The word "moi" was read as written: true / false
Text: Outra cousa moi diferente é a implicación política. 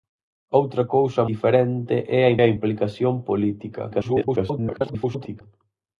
false